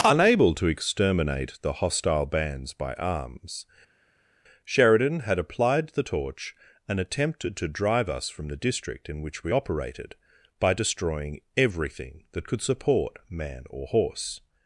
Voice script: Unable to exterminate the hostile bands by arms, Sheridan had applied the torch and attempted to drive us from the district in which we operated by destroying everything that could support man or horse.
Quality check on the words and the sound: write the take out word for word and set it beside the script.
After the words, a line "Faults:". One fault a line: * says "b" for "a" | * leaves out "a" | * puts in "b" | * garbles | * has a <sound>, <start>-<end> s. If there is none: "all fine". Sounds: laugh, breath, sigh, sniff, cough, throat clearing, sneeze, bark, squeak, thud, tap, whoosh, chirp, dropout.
Unable to exterminate the hostile bands by arms, Sheridan had applied the torch and attempted to drive us from the district in which we operated by destroying everything that could support man or horse.
Faults:
all fine